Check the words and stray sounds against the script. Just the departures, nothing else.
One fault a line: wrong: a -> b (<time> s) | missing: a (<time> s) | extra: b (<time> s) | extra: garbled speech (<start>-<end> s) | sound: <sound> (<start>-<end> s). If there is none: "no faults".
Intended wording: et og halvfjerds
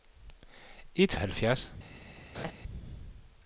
sound: laugh (2.3-2.5 s)